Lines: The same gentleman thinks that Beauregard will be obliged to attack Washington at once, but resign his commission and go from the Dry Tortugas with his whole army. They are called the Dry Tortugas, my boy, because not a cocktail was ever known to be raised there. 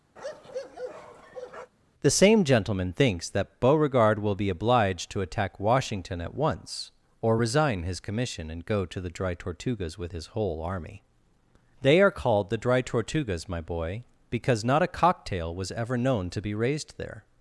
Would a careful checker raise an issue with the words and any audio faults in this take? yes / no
yes